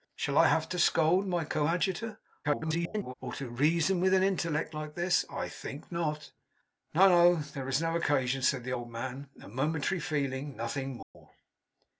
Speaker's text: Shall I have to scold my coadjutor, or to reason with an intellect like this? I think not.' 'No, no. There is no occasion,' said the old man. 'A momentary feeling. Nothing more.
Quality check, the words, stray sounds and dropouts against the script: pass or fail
fail